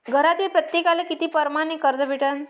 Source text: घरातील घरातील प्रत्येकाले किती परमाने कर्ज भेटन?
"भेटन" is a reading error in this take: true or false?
false